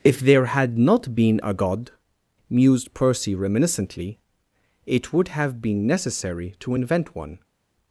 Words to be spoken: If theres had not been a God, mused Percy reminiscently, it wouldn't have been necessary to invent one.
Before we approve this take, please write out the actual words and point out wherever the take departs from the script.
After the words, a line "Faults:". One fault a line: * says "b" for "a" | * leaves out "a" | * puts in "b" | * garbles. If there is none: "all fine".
If there had not been a God, mused Percy reminiscently, it would have been necessary to invent one.
Faults:
* says "there" for "theres"
* says "would" for "wouldn't"